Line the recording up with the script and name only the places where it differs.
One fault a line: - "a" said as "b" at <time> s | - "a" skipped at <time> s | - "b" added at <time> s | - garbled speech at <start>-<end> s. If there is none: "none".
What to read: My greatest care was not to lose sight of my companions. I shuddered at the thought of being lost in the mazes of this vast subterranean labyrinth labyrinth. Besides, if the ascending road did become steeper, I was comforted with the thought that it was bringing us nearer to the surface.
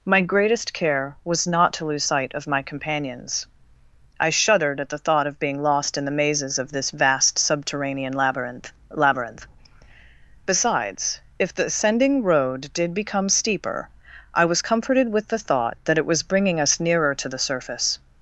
none